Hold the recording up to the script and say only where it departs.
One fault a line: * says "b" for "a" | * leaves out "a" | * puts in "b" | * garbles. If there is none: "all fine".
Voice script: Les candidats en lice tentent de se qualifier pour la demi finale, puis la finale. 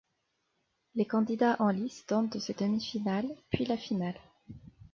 * leaves out "qualifier pour la"